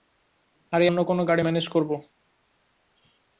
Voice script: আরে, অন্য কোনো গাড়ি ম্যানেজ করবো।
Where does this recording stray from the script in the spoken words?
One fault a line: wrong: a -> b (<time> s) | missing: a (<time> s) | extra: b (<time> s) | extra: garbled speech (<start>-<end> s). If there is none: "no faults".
no faults